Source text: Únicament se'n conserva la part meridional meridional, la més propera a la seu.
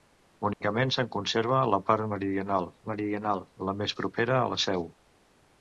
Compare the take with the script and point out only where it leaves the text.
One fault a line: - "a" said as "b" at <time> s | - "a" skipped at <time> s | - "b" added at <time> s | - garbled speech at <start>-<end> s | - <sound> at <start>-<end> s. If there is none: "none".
- dropout at 0.5-0.6 s